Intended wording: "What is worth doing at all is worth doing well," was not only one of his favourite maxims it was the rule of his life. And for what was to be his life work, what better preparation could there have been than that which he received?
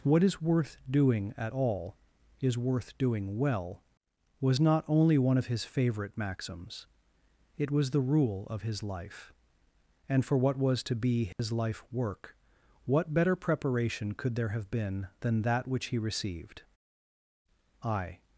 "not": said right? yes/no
yes